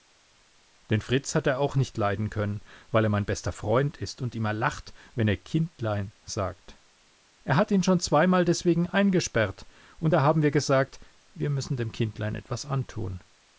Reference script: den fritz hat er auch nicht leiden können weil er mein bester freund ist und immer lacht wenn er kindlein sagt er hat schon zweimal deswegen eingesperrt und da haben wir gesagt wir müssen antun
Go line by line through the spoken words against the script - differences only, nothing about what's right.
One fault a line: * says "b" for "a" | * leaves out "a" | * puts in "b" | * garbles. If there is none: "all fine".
* puts in "ihn"
* puts in "dem kindlein etwas"